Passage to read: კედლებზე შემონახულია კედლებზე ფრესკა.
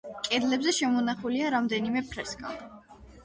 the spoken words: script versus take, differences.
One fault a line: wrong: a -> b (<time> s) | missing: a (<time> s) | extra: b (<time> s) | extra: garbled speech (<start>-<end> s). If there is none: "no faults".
wrong: კედლებზე -> რამდენიმე (1.6 s)